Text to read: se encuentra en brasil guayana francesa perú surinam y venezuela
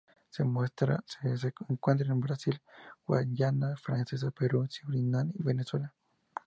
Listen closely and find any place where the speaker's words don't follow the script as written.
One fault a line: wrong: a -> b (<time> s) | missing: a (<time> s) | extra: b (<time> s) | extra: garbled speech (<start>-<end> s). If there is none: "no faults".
no faults